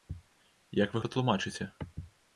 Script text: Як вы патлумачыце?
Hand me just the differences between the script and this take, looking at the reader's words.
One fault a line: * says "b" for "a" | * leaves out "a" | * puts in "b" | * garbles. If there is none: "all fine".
all fine